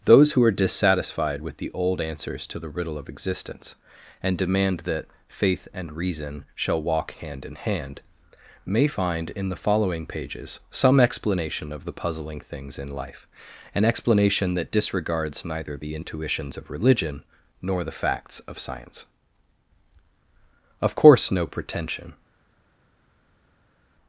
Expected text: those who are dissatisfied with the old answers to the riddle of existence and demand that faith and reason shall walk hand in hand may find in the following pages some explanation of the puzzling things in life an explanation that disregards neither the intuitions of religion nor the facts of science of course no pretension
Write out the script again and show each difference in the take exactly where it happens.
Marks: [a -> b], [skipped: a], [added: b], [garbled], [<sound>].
those who are dissatisfied with the old answers to the riddle of existence and demand that faith and reason shall walk hand in hand may find in the following pages some explanation of the puzzling things in life an explanation that disregards neither the intuitions of religion nor the facts of science of course no pretension